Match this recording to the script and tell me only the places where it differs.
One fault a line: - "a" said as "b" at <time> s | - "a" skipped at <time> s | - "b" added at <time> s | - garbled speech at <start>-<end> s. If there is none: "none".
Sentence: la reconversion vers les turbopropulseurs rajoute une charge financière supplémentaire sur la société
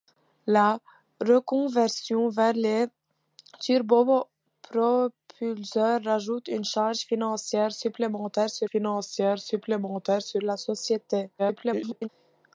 - "financière supplémentaire sur" added at 8.6 s
- garbled speech at 11.4-12.1 s